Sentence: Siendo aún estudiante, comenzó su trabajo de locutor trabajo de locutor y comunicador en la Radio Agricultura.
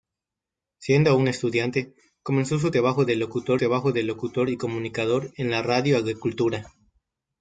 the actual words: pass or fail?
pass